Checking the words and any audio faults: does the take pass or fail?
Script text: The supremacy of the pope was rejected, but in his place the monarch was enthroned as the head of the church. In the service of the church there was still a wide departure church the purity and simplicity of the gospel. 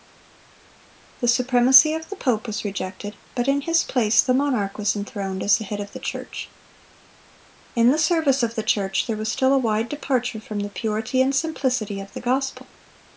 fail